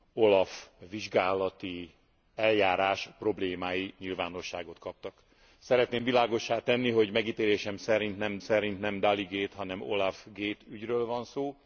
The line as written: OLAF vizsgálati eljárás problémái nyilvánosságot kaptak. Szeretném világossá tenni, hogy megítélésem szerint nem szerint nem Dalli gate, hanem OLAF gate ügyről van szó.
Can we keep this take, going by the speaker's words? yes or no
yes